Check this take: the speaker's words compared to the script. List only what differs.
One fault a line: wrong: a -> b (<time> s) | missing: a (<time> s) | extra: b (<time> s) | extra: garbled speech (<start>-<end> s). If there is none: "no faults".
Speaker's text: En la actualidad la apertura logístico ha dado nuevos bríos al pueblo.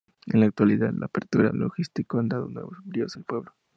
no faults